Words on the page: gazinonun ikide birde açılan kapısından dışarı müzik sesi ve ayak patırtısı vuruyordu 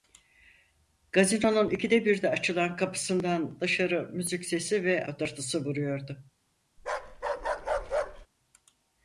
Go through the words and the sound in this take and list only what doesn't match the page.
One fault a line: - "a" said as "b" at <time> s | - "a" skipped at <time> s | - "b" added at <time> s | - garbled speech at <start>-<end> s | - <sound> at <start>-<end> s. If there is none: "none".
- "ayak" skipped at 5.1 s
- bark at 6.8-8.3 s